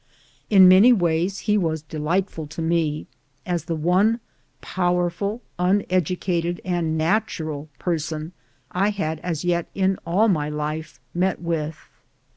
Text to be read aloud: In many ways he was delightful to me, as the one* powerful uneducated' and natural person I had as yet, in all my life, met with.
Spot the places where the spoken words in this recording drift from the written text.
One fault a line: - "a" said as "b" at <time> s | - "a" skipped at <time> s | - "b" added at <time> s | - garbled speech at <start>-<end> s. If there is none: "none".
none